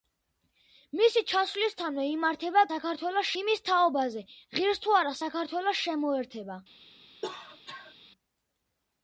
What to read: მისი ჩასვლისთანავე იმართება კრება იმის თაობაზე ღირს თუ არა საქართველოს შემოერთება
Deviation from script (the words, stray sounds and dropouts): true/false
true